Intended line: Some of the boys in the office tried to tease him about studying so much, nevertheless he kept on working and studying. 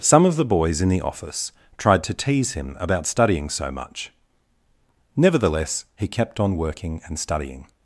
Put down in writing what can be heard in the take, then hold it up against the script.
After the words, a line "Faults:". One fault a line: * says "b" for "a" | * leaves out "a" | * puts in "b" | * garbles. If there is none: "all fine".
Some of the boys in the office tried to tease him about studying so much, nevertheless he kept on working and studying.
Faults:
all fine